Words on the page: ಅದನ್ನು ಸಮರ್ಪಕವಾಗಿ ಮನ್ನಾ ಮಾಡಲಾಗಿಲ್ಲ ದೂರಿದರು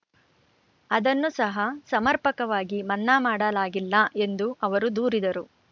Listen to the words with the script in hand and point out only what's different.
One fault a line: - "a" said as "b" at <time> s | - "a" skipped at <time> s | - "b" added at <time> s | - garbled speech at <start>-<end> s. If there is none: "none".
- "ಸಹ" added at 1.3 s
- "ಎಂದು ಅವರು" added at 4.2 s